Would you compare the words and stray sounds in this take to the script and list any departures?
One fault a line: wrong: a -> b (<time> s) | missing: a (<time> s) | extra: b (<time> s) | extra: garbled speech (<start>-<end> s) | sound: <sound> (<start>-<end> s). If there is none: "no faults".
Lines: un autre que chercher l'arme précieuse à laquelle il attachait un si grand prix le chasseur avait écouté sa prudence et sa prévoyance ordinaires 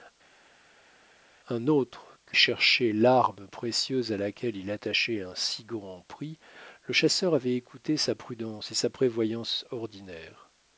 no faults